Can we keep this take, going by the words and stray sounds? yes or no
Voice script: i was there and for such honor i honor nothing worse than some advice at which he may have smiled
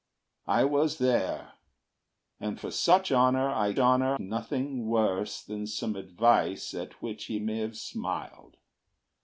yes